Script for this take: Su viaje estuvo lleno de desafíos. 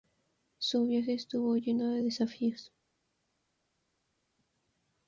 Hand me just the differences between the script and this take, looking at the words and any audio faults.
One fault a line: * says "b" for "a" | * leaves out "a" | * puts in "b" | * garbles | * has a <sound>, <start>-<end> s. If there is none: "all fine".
all fine